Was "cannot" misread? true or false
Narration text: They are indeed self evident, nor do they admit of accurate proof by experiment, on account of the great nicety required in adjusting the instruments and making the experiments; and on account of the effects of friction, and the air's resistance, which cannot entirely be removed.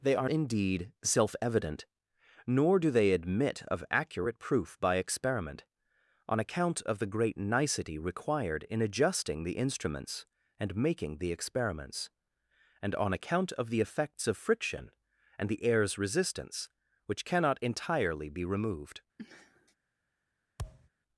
false